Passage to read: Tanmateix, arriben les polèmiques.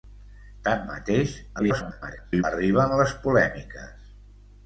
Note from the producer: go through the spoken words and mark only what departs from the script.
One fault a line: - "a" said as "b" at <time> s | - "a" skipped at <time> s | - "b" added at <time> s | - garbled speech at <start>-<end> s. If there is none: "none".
- garbled speech at 1.6-2.4 s